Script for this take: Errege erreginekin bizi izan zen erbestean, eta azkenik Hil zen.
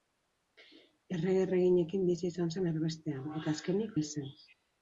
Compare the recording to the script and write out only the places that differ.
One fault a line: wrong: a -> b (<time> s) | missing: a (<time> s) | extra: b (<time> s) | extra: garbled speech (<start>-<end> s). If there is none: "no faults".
no faults